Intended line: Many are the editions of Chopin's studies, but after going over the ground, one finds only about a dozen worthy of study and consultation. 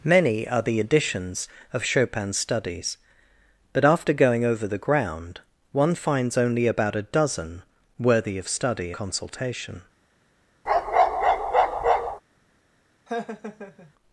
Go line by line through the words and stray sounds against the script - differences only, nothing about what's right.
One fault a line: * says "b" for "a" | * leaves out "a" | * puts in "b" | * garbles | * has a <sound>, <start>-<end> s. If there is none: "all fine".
* leaves out "and"
* has a bark, 10.7-12.2 s
* has a laugh, 13.1-13.9 s